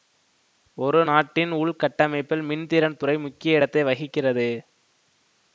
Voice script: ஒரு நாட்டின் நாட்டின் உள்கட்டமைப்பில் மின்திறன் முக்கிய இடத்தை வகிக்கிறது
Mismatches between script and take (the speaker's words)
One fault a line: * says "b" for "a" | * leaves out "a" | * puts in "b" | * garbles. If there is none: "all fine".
* leaves out "நாட்டின்"
* puts in "துறை"